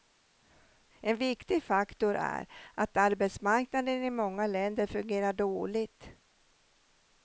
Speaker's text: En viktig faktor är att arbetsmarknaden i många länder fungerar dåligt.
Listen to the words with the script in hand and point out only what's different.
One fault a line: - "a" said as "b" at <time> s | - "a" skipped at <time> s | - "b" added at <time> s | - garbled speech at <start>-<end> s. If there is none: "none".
none